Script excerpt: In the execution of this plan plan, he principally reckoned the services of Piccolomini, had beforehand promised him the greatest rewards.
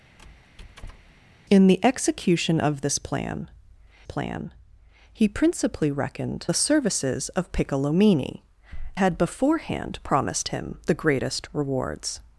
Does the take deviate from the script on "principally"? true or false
false